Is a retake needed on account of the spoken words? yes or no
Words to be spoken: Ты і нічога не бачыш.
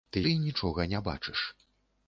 no